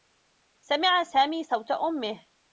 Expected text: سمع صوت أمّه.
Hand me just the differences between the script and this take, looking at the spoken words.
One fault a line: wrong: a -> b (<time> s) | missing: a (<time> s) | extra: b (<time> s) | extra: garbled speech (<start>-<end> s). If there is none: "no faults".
extra: سامي (1.0 s)